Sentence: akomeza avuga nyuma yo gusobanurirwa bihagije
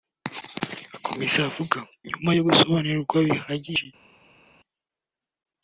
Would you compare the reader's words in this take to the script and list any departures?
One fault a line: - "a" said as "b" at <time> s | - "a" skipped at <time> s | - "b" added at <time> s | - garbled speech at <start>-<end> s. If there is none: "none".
none